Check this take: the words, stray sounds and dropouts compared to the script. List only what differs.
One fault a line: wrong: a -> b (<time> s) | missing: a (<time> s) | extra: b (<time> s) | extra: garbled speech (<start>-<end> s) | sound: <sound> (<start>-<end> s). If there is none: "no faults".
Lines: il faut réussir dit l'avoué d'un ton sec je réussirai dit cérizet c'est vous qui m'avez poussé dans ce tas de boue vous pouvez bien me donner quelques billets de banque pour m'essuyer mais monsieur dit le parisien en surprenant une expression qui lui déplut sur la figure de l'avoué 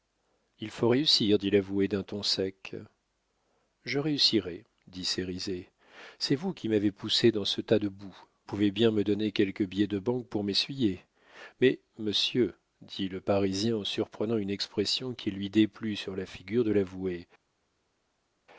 missing: vous (8.2 s)